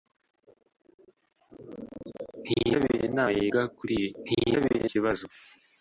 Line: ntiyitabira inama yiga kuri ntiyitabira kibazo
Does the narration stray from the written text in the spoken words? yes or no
no